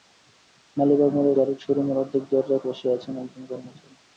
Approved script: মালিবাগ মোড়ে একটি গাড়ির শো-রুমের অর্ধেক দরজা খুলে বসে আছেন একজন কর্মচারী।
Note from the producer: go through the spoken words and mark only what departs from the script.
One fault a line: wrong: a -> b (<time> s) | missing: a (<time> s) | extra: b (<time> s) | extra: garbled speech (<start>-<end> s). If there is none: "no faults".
missing: একটি (1.3 s)
missing: খুলে (2.6 s)